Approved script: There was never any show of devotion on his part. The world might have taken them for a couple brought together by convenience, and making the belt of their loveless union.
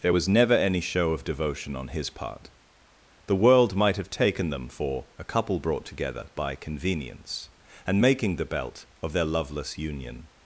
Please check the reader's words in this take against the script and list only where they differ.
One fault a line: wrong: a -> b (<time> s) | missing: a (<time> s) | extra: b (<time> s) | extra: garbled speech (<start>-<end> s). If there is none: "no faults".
no faults